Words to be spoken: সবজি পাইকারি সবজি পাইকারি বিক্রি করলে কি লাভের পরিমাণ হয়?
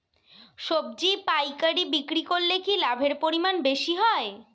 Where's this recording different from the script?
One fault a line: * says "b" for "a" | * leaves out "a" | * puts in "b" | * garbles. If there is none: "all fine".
* leaves out "সবজি পাইকারি"
* puts in "বেশি"